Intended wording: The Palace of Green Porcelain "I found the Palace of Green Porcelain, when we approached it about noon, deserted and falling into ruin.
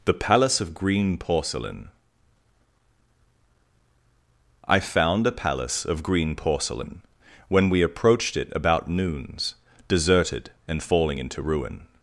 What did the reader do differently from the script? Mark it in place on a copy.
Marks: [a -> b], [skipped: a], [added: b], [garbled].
The Palace of Green Porcelain "I found [the -> a] Palace of Green Porcelain, when we approached it about [noon, -> noons] deserted and falling into ruin.